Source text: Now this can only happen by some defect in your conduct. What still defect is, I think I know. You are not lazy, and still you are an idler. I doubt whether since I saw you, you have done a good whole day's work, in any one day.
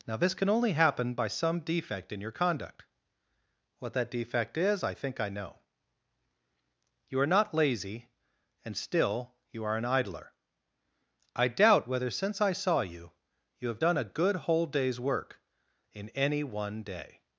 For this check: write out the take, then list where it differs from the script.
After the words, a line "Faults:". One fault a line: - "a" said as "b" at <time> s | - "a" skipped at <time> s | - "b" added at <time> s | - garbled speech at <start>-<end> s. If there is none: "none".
Now this can only happen by some defect in your conduct. What that defect is, I think I know. You are not lazy, and still you are an idler. I doubt whether since I saw you, you have done a good whole day's work, in any one day.
Faults:
- "still" said as "that" at 3.9 s